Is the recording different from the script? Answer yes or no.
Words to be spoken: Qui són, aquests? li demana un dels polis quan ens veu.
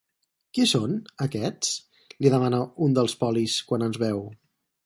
no